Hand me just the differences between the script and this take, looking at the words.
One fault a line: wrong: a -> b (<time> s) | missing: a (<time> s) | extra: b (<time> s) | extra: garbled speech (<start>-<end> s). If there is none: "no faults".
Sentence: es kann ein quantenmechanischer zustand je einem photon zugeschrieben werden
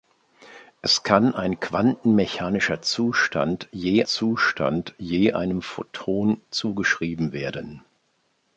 extra: zustand je (4.0 s)